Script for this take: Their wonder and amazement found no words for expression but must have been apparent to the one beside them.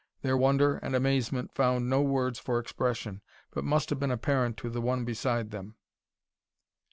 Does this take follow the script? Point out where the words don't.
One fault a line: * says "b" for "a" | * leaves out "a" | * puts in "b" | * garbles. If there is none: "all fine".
all fine